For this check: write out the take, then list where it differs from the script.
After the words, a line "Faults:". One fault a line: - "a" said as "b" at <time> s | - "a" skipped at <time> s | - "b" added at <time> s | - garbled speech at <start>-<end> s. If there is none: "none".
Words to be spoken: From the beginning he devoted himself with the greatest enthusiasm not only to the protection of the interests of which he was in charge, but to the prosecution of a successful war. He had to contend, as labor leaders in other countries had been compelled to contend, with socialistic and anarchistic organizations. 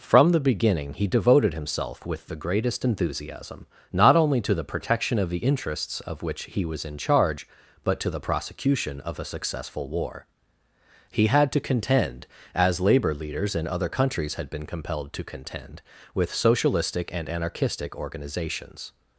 From the beginning he devoted himself with the greatest enthusiasm not only to the protection of the interests of which he was in charge, but to the prosecution of a successful war. He had to contend, as labor leaders in other countries had been compelled to contend, with socialistic and anarchistic organizations.
Faults:
none